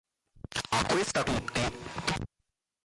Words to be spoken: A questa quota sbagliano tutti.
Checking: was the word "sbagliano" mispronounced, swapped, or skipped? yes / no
yes